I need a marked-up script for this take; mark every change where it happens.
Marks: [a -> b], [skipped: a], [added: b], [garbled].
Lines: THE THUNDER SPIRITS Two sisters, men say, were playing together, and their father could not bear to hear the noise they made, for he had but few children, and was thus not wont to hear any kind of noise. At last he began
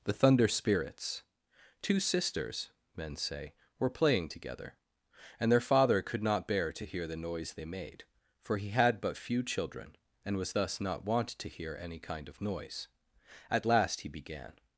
THE THUNDER SPIRITS Two sisters, men say, were playing together, and their father could not bear to hear the noise they made, for he had but few children, and was thus not wont to hear any kind of noise. At last he began